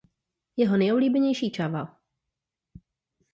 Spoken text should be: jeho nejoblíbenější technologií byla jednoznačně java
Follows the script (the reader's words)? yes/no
no